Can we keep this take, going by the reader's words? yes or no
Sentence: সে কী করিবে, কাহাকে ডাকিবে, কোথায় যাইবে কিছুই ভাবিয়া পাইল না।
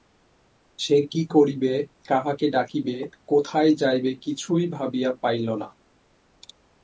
yes